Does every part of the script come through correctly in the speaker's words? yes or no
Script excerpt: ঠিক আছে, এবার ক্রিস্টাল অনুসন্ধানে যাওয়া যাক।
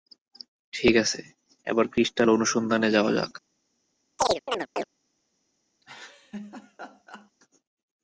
yes